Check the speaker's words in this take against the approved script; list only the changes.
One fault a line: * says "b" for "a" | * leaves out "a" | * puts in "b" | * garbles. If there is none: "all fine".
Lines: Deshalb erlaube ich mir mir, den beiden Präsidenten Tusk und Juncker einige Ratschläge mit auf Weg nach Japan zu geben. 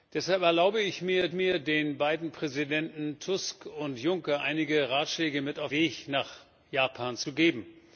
all fine